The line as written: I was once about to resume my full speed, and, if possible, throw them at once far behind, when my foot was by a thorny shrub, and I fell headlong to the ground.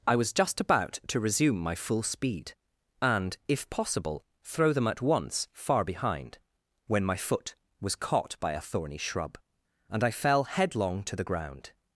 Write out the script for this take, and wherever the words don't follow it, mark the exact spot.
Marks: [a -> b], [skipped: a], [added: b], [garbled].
I was [once -> just] about to resume my full speed, and, if possible, throw them at once far behind, when my foot was [added: caught] by a thorny shrub, and I fell headlong to the ground.